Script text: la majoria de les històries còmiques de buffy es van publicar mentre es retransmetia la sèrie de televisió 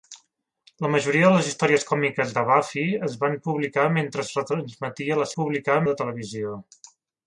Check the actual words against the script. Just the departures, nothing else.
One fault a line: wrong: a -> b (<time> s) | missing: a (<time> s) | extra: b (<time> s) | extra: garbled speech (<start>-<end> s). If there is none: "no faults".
wrong: sèrie -> publicar (5.4 s)